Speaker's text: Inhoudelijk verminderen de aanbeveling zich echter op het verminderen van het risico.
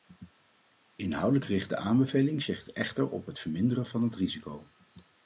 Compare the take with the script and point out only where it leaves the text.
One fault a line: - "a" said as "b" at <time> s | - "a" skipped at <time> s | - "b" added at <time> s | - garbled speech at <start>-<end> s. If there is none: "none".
- "verminderen" said as "richt" at 1.4 s